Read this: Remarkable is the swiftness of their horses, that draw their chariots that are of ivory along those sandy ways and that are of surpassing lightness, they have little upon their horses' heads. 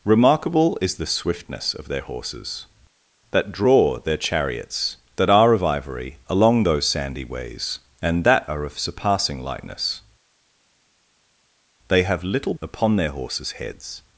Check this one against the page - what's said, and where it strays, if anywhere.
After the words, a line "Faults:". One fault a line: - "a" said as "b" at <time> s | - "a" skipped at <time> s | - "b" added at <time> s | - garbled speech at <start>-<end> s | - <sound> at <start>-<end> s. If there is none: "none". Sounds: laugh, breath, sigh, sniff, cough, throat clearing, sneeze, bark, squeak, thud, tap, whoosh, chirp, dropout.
Remarkable is the swiftness of their horses, that draw their chariots that are of ivory along those sandy ways and that are of surpassing lightness, they have little upon their horses' heads.
Faults:
none